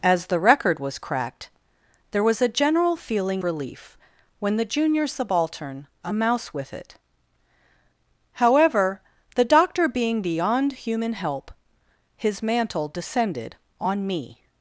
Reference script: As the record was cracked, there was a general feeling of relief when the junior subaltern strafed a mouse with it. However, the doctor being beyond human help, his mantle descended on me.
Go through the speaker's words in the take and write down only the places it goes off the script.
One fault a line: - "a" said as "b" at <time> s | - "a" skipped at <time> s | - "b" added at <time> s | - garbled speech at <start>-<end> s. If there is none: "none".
- "of" skipped at 3.4 s
- "strafed" skipped at 5.9 s